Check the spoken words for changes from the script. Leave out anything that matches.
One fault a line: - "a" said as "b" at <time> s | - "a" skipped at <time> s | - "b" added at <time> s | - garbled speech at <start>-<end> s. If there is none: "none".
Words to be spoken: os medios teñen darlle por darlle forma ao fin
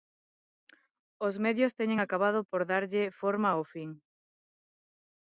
- "darlle" said as "acabado" at 2.0 s